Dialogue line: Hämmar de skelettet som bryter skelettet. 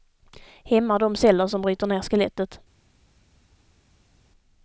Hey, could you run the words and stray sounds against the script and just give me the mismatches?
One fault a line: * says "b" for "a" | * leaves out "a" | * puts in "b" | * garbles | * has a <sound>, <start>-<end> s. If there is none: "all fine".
* says "celler" for "skelettet"
* puts in "ner"